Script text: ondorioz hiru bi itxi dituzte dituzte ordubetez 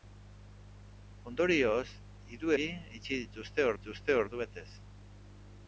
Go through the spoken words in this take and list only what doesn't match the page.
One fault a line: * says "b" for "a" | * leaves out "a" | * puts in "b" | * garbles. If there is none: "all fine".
all fine